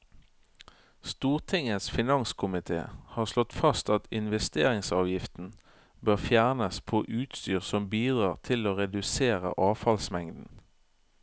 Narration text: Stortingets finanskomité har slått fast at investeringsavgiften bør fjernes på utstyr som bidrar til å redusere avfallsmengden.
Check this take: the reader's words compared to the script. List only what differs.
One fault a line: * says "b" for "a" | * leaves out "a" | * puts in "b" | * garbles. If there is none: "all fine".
all fine